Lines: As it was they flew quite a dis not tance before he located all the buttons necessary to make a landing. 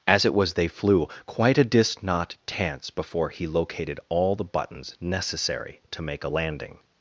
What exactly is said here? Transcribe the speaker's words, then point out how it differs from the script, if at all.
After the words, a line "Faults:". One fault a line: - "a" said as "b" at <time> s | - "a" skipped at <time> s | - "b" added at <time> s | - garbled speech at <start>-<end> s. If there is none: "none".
As it was they flew quite a dis not tance before he located all the buttons necessary to make a landing.
Faults:
none